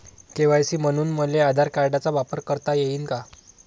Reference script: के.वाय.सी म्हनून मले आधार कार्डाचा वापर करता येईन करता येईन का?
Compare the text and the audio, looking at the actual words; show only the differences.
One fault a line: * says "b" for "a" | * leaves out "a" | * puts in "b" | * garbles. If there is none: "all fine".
* leaves out "करता येईन"